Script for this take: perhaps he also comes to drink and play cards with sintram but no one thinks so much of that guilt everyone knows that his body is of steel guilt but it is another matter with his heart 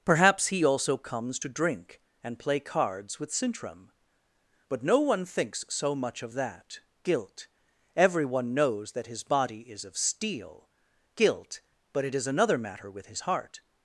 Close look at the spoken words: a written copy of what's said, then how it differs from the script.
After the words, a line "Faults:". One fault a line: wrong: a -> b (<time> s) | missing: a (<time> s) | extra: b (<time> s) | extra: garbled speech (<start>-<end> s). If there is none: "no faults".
perhaps he also comes to drink and play cards with sintram but no one thinks so much of that guilt everyone knows that his body is of steel guilt but it is another matter with his heart
Faults:
no faults